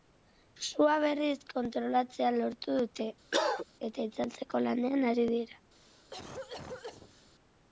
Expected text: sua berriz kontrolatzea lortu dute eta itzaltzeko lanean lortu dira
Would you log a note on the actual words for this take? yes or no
yes